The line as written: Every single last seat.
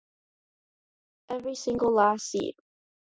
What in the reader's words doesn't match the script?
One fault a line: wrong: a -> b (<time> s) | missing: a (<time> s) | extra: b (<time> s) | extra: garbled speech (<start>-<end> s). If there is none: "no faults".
no faults